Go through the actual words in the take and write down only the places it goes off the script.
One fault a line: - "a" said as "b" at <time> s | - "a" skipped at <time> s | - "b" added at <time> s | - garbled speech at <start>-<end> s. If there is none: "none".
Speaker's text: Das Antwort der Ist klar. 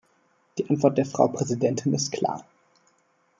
- "Das" said as "Die" at 0.6 s
- "Frau Präsidentin" added at 1.1 s